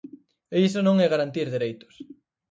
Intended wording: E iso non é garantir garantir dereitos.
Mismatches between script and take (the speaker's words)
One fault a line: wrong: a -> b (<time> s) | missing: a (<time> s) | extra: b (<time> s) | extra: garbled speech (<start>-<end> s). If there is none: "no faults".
missing: garantir (1.5 s)